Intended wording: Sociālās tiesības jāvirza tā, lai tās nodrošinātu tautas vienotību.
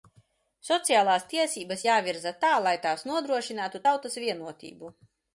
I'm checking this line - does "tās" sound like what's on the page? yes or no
yes